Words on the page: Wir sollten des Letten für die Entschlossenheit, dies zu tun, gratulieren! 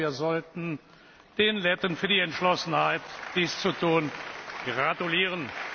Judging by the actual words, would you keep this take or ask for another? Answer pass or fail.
fail